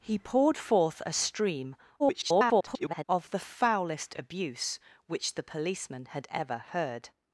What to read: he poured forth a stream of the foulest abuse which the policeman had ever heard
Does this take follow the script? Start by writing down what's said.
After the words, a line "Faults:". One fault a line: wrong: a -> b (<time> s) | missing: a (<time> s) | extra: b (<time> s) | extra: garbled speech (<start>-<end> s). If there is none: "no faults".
he poured forth a stream [garbled] of the foulest abuse which the policeman had ever heard
Faults:
extra: garbled speech (2.0-3.0 s)